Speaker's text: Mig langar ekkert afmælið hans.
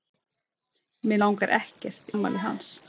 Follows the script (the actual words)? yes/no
yes